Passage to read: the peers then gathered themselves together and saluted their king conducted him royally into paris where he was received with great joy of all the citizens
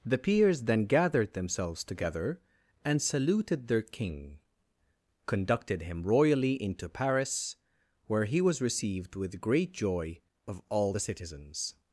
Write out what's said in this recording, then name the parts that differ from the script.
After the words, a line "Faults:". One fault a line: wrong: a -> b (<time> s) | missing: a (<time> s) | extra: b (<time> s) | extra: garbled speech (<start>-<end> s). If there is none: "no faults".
the peers then gathered themselves together and saluted their king conducted him royally into paris where he was received with great joy of all the citizens
Faults:
no faults